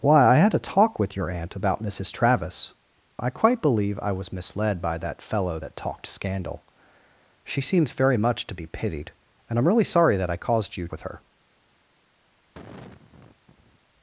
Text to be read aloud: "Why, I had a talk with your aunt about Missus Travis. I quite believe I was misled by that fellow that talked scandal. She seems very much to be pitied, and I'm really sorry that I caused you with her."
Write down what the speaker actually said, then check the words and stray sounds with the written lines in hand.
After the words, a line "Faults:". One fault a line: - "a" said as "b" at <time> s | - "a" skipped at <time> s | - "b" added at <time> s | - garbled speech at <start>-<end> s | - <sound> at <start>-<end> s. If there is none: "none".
"Why, I had a talk with your aunt about Missus Travis. I quite believe I was misled by that fellow that talked scandal. She seems very much to be pitied, and I'm really sorry that I caused you with her."
Faults:
- sigh at 12.5-13.8 s